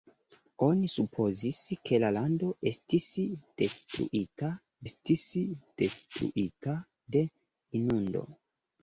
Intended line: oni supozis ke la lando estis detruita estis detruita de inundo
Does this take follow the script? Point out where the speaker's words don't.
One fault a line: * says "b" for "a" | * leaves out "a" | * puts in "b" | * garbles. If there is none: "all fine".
all fine